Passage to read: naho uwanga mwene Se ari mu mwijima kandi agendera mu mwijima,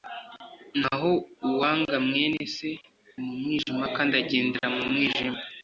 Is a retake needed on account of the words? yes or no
yes